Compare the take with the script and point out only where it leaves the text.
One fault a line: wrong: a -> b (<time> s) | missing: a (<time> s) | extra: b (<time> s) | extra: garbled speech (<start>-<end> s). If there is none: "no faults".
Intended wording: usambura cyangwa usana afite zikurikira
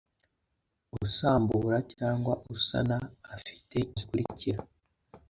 no faults